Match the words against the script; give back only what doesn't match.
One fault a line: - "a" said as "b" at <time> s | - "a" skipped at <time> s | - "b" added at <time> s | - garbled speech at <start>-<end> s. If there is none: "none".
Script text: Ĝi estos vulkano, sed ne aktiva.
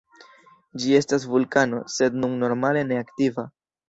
- "estos" said as "estas" at 1.0 s
- "nun normale" added at 2.2 s